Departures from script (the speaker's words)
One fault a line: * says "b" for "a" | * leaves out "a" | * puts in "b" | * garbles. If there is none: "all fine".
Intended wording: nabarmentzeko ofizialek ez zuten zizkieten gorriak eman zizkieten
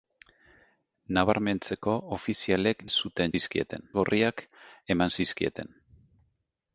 all fine